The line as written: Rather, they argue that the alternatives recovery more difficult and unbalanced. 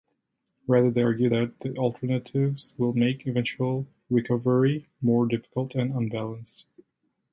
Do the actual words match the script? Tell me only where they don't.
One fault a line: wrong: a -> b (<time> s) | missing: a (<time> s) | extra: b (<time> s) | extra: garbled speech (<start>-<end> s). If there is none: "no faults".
extra: will make eventual (2.8 s)